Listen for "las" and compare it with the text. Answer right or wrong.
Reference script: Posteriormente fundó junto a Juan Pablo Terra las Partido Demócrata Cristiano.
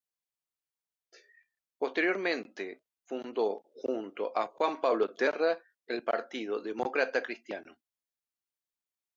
wrong